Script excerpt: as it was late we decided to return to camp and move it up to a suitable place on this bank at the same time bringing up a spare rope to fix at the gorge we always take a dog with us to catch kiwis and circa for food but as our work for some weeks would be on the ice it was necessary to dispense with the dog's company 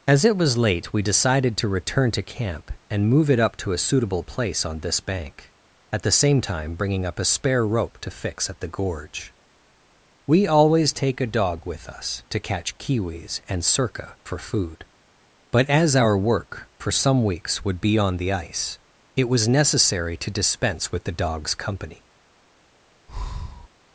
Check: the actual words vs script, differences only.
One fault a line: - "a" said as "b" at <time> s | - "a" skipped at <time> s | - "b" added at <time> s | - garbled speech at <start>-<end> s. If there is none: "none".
none